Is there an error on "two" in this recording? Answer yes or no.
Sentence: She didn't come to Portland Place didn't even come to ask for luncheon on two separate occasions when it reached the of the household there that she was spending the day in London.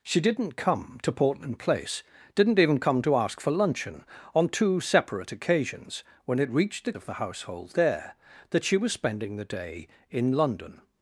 no